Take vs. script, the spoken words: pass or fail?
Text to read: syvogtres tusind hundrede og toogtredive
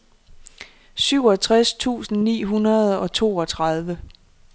fail